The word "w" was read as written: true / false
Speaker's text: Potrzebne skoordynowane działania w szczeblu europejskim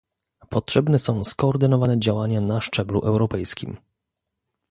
false